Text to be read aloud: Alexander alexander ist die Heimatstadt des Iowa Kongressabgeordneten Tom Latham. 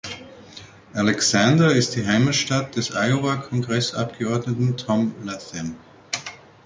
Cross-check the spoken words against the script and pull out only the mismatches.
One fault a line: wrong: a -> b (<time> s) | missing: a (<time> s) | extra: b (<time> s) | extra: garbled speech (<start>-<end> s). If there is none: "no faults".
missing: alexander (1.8 s)